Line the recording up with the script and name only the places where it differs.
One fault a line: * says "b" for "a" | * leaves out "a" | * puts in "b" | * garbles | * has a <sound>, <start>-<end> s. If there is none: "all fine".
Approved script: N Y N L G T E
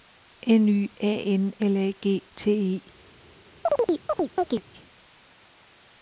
* puts in "A"
* puts in "A"
* has a chirp, 3.7-4.6 s